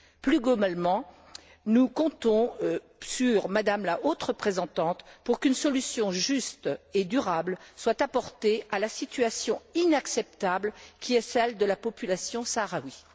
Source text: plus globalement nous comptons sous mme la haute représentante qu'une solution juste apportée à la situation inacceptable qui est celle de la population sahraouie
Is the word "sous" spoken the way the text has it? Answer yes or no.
no